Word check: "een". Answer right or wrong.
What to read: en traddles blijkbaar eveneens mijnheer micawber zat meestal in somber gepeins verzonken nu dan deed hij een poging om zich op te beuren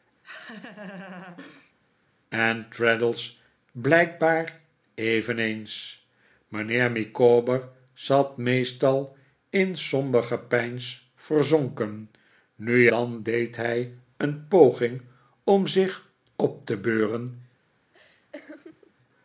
right